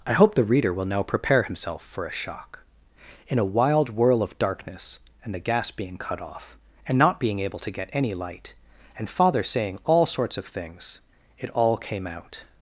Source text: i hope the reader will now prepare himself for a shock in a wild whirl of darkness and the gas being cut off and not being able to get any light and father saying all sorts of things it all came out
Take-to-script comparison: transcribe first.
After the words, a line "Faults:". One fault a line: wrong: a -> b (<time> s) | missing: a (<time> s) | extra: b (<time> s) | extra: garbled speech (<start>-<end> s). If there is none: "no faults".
i hope the reader will now prepare himself for a shock in a wild whirl of darkness and the gas being cut off and not being able to get any light and father saying all sorts of things it all came out
Faults:
no faults